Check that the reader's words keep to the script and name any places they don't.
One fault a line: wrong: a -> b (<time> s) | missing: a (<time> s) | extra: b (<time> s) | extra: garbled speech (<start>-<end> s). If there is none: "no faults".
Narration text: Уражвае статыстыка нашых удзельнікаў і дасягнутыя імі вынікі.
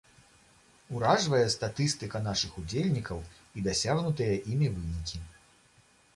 no faults